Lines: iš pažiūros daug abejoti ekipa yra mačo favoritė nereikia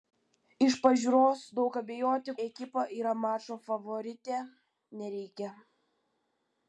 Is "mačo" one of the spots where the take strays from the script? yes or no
no